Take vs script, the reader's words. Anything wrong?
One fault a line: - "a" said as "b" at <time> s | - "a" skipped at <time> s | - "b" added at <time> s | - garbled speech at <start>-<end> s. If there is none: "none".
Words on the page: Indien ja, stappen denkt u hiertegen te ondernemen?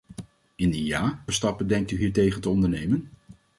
none